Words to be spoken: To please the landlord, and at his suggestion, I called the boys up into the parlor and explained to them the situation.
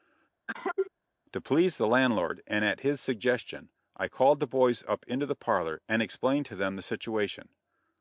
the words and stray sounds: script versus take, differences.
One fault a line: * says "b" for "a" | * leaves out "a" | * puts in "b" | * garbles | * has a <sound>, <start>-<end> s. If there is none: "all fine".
* has a cough, 0.5-0.9 s